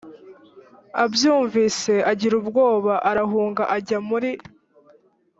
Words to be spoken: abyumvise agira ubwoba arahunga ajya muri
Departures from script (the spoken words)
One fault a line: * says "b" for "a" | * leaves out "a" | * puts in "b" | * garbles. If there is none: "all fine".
all fine